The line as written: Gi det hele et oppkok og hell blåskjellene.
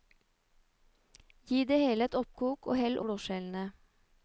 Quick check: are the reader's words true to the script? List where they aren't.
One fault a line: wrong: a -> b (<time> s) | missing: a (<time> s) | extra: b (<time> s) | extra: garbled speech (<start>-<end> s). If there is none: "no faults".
no faults